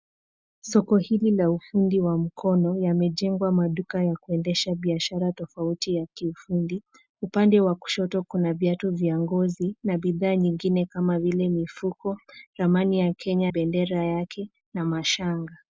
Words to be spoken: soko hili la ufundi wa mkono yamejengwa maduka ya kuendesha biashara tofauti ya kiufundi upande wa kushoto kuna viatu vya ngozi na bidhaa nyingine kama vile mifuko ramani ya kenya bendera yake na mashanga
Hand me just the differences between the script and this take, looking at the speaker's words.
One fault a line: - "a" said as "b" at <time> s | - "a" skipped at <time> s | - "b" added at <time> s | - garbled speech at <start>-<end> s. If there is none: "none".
none